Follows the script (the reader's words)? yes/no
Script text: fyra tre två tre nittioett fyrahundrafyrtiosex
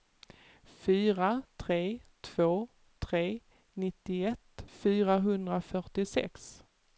yes